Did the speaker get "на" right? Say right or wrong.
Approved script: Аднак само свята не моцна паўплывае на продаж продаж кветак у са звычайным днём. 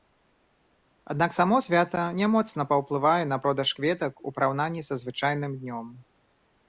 right